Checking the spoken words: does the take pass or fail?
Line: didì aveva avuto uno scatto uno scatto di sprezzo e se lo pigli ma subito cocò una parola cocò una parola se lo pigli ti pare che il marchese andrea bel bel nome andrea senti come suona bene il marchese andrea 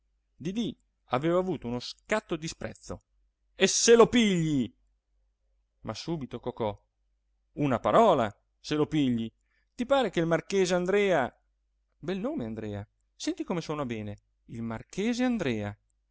fail